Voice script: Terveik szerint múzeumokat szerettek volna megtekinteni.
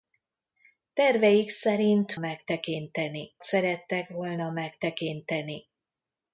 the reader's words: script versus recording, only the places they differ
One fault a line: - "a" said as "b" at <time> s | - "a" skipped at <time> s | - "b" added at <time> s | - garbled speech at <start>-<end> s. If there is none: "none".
- "múzeumokat" said as "megtekinteni" at 2.2 s